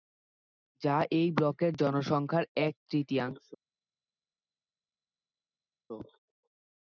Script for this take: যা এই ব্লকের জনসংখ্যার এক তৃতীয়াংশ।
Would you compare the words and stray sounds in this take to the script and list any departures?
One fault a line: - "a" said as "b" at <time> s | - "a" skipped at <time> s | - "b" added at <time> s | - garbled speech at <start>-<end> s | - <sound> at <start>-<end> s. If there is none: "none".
none